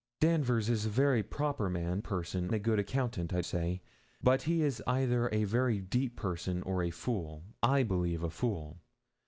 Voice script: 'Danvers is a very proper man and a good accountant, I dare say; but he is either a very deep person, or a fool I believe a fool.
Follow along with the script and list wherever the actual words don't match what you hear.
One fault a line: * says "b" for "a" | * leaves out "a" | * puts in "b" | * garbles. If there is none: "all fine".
* says "person" for "and"
* leaves out "dare"